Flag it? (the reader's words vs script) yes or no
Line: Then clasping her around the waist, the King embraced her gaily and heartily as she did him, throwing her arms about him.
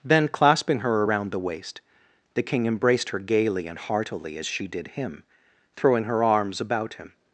no